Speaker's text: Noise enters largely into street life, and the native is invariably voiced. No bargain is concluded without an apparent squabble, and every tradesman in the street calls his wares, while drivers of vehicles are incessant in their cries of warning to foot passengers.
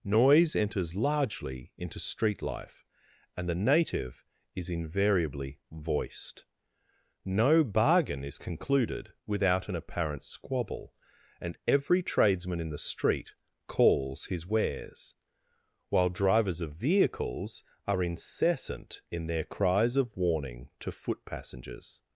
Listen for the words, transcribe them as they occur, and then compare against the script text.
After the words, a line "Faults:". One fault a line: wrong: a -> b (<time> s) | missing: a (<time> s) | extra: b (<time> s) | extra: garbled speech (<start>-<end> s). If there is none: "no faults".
Noise enters largely into street life, and the native is invariably voiced. No bargain is concluded without an apparent squabble, and every tradesman in the street calls his wares, while drivers of vehicles are incessant in their cries of warning to foot passengers.
Faults:
no faults